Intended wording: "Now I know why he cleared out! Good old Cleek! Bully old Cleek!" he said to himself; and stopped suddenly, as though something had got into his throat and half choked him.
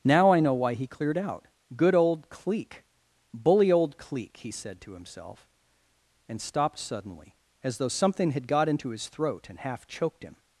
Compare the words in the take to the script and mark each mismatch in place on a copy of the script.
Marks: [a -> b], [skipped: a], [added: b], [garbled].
"Now I know why he cleared out! Good old Cleek! Bully old Cleek!" he said to himself; and stopped suddenly, as though something had got into his throat and half choked him.